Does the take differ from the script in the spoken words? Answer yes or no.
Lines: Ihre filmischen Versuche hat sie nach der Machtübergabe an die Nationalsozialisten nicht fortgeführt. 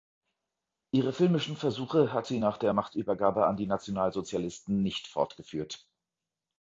no